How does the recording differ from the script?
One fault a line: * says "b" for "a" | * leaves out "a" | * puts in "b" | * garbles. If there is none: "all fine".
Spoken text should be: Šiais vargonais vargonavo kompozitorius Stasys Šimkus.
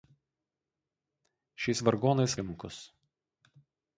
* leaves out "vargonavo kompozitorius Stasys"